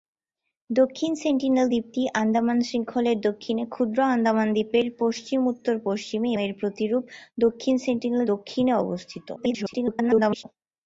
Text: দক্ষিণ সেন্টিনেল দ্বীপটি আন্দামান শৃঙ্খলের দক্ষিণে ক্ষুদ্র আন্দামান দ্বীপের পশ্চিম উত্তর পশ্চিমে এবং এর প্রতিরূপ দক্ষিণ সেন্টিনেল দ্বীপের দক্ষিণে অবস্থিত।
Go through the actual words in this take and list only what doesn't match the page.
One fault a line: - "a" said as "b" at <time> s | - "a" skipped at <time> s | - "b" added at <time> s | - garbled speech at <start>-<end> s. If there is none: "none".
- "এবং" skipped at 6.3 s
- "দ্বীপের" skipped at 8.2 s
- garbled speech at 9.4-10.4 s